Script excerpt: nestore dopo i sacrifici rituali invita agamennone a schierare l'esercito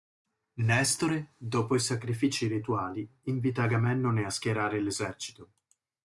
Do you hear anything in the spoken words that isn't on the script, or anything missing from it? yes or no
no